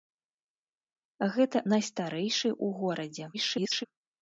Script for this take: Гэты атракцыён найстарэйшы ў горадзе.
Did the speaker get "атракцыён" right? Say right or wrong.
wrong